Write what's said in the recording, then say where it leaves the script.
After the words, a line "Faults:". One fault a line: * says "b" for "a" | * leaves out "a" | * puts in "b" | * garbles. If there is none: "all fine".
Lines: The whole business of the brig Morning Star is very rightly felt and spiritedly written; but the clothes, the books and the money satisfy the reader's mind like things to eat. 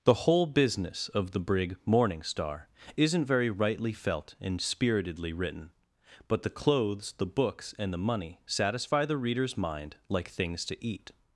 The whole business of the brig Morning Star isn't very rightly felt and spiritedly written; but the clothes, the books and the money satisfy the reader's mind like things to eat.
Faults:
* says "isn't" for "is"